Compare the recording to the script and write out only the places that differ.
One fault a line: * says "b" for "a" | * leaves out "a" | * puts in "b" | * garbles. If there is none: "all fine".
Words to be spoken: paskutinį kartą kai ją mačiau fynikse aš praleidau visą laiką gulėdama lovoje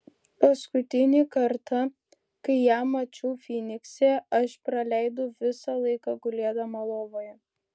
all fine